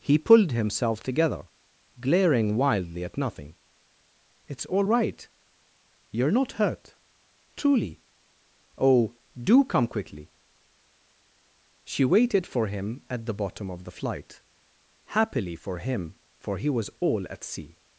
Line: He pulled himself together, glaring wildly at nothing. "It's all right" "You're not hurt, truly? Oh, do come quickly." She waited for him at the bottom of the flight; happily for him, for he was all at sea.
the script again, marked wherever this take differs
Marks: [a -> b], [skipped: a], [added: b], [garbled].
He pulled himself together, glaring wildly at nothing. "It's all right" "You're not hurt, truly? Oh, do come quickly." She waited for him at the bottom of the flight; happily for him, for he was all at sea.